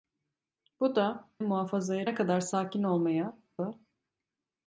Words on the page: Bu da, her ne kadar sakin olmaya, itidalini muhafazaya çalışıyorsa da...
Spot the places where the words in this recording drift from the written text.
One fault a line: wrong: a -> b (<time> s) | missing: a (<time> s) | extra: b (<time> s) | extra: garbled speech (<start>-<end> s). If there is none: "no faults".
wrong: her -> muhafazaya (1.4 s)
missing: itidalini muhafazaya çalışıyorsa (3.4 s)